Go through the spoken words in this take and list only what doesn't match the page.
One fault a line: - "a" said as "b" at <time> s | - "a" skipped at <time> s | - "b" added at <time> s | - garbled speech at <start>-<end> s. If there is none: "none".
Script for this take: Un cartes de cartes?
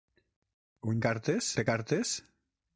none